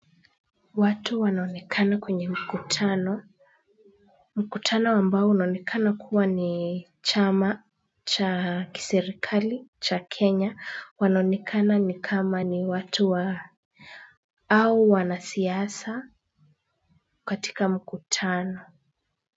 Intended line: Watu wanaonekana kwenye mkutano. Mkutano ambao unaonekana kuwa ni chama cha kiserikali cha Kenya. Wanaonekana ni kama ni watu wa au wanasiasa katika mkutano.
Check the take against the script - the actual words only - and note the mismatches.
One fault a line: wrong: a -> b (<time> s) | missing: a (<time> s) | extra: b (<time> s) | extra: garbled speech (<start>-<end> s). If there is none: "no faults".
no faults